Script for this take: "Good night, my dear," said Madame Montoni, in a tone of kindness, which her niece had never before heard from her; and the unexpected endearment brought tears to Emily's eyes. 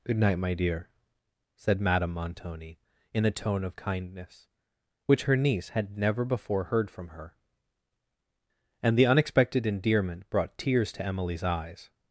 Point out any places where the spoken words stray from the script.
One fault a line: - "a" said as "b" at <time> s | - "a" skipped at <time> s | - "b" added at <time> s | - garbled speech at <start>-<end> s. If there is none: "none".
none